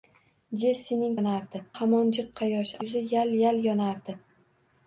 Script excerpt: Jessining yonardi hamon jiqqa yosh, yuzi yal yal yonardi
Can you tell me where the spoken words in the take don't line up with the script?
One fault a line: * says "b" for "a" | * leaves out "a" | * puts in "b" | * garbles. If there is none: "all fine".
all fine